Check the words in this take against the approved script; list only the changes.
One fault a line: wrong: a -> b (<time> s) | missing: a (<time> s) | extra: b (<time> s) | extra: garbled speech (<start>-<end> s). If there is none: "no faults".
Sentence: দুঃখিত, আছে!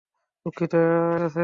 no faults